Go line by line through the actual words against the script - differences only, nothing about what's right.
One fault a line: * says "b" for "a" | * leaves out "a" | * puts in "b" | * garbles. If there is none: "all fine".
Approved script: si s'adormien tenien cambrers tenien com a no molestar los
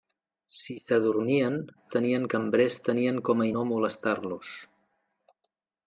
all fine